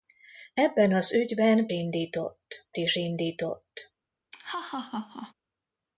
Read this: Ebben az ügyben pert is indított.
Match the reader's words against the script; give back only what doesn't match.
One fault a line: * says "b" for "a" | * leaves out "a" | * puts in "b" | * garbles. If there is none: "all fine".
* says "indított" for "pert"